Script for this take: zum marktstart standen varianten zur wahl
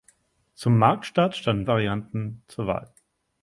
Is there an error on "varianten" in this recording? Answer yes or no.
no